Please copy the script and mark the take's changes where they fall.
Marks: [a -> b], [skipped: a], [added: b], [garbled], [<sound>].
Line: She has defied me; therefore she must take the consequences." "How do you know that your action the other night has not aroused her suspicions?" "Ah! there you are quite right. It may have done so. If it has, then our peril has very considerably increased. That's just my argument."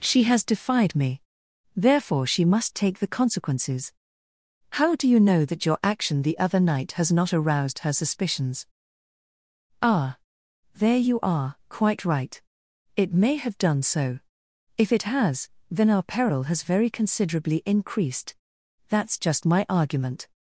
She has defied me; therefore she must take the consequences." "How do you know that your action the other night has not aroused her suspicions?" "Ah! there you are quite right. It may have done so. If it has, then our peril has very considerably increased. That's just my argument."